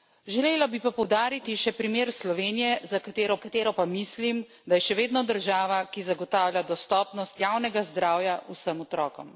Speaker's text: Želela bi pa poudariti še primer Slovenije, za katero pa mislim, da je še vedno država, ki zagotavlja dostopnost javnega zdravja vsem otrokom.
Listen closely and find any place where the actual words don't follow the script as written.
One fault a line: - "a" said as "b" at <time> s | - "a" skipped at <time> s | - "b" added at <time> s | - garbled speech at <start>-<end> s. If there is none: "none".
- "katero" added at 3.4 s